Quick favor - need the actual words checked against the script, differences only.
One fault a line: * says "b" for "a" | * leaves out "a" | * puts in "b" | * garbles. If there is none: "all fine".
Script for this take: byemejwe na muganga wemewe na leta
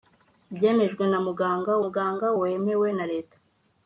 * puts in "muganga"